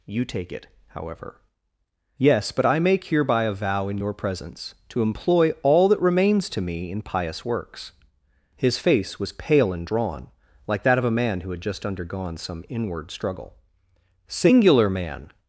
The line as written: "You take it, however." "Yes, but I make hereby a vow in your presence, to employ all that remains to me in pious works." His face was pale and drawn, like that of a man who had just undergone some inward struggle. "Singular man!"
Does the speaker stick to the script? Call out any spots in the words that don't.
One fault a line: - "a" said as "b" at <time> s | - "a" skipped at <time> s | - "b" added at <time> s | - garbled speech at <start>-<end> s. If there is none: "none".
none